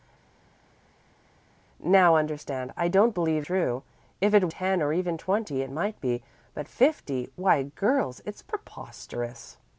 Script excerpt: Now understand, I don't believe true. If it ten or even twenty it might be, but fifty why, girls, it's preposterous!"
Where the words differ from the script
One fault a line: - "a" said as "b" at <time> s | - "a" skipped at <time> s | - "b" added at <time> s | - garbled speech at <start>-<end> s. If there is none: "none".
none